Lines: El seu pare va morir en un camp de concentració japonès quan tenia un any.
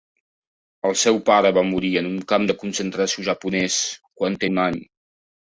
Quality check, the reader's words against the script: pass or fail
fail